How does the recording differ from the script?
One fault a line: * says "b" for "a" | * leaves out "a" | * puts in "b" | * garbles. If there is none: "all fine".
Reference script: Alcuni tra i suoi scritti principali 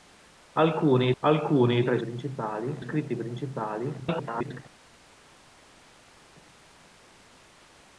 * puts in "alcuni"
* says "principali" for "suoi"
* garbles